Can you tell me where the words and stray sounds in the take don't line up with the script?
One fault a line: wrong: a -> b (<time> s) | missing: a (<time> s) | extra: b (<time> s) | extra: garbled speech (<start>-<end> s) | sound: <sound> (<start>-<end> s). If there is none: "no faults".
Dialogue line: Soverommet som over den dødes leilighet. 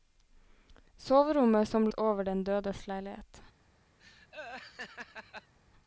sound: laugh (4.0-5.5 s)